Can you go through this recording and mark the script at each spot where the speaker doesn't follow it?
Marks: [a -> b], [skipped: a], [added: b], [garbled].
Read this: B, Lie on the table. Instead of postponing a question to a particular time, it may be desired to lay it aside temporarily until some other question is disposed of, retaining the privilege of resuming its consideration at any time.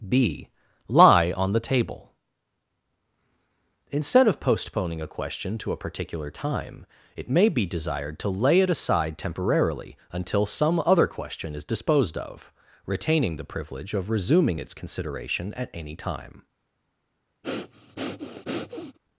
B, Lie on the table. Instead of postponing a question to a particular time, it may be desired to lay it aside temporarily until some other question is disposed of, retaining the privilege of resuming its consideration at any time.